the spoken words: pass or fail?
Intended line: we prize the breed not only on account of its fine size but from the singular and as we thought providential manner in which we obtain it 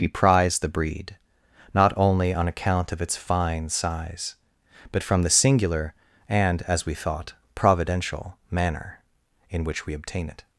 pass